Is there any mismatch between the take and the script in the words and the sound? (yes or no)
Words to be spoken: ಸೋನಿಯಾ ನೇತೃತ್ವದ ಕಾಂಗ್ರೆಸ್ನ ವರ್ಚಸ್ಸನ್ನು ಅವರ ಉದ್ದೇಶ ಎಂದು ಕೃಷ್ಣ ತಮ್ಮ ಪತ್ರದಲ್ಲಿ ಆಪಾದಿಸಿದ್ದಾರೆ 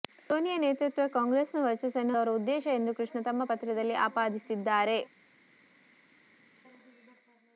no